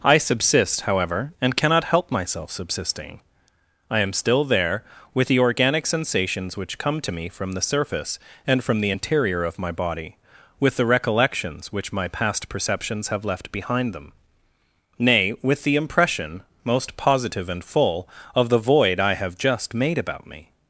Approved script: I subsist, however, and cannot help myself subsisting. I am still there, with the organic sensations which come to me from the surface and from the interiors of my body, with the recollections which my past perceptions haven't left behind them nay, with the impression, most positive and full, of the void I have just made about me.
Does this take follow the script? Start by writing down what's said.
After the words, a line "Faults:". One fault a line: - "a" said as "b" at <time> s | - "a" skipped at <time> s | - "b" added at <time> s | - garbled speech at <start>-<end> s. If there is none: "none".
I subsist, however, and cannot help myself subsisting. I am still there, with the organic sensations which come to me from the surface and from the interior of my body, with the recollections which my past perceptions have left behind them nay, with the impression, most positive and full, of the void I have just made about me.
Faults:
- "interiors" said as "interior" at 8.9 s
- "haven't" said as "have" at 13.1 s